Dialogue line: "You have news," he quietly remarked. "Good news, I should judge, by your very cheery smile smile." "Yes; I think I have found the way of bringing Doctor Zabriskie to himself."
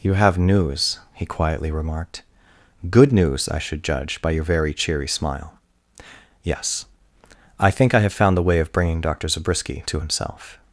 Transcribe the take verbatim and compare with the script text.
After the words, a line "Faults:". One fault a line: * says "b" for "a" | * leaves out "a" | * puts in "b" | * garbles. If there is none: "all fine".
"You have news," he quietly remarked. "Good news, I should judge, by your very cheery smile." "Yes; I think I have found the way of bringing Doctor Zabriskie to himself."
Faults:
* leaves out "smile"